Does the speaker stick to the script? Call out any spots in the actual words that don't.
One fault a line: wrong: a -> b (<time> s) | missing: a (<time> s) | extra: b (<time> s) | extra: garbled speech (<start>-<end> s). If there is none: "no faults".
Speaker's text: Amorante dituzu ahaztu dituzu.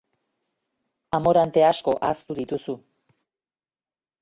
wrong: dituzu -> asko (1.7 s)